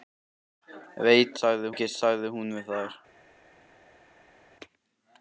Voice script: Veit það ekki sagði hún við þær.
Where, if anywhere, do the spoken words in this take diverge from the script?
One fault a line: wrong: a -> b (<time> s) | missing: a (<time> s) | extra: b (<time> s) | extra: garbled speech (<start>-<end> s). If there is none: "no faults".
wrong: það -> sagði (1.4 s)